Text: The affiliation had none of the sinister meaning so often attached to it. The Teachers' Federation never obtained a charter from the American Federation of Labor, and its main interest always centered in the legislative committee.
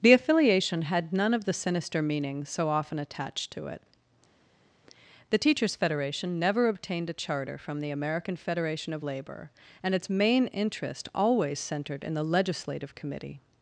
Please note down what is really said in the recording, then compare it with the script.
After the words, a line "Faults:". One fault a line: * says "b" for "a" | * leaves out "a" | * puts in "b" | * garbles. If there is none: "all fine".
The affiliation had none of the sinister meaning so often attached to it. The Teachers' Federation never obtained a charter from the American Federation of Labor, and its main interest always centered in the legislative committee.
Faults:
all fine